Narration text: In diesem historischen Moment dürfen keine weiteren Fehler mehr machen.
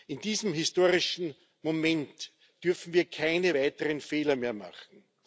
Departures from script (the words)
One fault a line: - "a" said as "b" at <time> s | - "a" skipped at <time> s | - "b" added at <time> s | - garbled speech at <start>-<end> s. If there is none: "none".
- "wir" added at 2.9 s